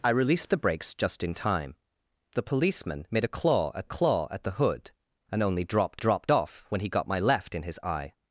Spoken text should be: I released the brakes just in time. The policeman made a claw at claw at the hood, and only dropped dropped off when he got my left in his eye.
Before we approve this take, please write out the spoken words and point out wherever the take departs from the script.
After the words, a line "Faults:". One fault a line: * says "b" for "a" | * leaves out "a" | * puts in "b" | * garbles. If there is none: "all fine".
I released the brakes just in time. The policeman made a claw at claw at the hood, and only dropped dropped off when he got my left in his eye.
Faults:
all fine